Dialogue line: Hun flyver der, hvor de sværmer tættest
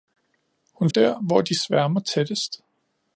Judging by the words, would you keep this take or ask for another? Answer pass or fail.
fail